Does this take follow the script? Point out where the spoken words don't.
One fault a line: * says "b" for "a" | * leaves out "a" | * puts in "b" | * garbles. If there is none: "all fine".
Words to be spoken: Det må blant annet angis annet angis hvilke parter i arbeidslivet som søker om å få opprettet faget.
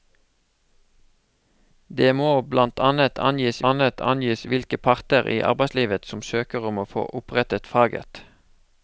all fine